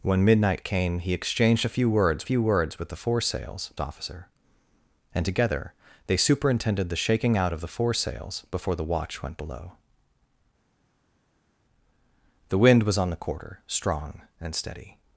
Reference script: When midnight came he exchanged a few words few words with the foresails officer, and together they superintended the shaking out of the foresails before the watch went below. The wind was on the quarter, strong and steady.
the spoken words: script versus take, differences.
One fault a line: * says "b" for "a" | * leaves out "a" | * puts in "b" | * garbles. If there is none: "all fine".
all fine